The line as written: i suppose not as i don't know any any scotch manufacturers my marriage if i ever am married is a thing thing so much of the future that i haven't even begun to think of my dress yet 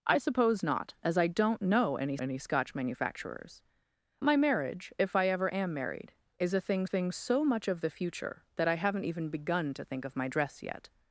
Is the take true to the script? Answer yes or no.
yes